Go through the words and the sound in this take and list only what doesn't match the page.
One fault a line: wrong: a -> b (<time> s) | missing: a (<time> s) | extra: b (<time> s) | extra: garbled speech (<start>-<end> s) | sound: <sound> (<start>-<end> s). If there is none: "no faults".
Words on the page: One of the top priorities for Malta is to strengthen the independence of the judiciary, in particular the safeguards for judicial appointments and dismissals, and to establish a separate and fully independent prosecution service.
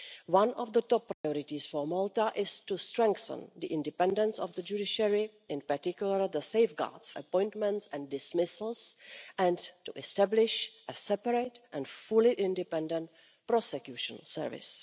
sound: dropout (1.1-1.2 s)
missing: for judicial (7.1 s)